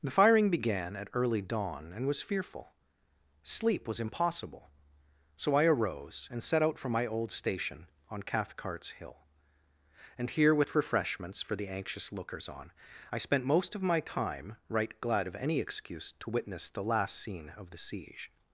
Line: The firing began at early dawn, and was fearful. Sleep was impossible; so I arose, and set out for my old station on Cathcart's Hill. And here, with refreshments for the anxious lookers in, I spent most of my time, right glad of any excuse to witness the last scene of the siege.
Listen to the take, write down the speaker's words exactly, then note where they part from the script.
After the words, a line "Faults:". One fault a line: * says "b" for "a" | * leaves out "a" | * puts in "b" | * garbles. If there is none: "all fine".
The firing began at early dawn, and was fearful. Sleep was impossible; so I arose, and set out for my old station on Cathcart's Hill. And here, with refreshments for the anxious lookers on, I spent most of my time, right glad of any excuse to witness the last scene of the siege.
Faults:
* says "on" for "in"